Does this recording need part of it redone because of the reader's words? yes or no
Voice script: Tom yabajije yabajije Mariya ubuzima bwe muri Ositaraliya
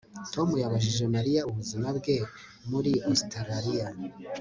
yes